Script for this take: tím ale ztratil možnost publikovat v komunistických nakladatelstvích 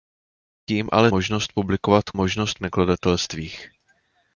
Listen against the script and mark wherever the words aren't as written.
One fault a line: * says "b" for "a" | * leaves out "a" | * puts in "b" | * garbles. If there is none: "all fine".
* leaves out "ztratil"
* says "možnost" for "komunistických"